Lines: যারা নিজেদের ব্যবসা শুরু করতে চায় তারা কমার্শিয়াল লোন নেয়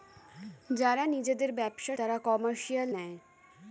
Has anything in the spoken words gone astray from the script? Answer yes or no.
yes